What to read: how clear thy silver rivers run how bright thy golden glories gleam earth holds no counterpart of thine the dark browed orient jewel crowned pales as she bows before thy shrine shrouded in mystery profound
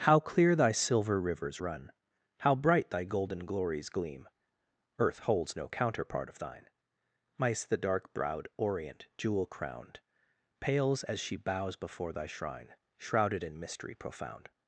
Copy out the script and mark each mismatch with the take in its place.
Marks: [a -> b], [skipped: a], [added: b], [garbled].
how clear thy silver rivers run how bright thy golden glories gleam earth holds no counterpart of thine [added: mice] the dark browed orient jewel crowned pales as she bows before thy shrine shrouded in mystery profound